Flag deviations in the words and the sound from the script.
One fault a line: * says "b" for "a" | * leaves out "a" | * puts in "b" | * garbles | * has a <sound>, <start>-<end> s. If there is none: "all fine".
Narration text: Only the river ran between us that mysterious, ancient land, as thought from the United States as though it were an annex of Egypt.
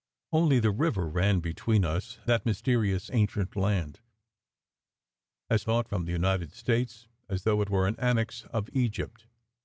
all fine